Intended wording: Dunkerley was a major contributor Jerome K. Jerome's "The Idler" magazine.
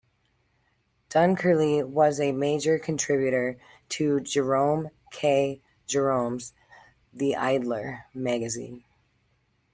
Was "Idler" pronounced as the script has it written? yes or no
yes